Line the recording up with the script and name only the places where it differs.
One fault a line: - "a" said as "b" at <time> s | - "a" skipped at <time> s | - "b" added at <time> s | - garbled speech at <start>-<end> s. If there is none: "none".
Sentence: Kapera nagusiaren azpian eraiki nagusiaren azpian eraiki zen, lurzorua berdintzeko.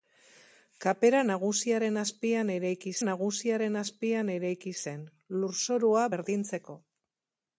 none